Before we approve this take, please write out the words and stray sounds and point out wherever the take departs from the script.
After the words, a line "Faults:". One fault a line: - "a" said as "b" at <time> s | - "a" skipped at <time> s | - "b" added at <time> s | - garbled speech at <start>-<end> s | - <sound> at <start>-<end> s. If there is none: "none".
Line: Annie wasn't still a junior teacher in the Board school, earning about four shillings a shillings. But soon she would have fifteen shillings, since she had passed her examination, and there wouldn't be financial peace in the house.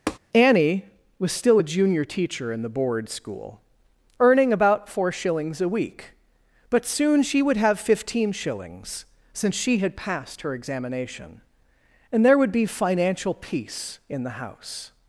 Annie was still a junior teacher in the Board school, earning about four shillings a week. But soon she would have fifteen shillings, since she had passed her examination, and there would be financial peace in the house.
Faults:
- tap at 0.1-0.2 s
- "wasn't" said as "was" at 1.2 s
- "shillings" said as "week" at 5.7 s
- "wouldn't" said as "would" at 12.4 s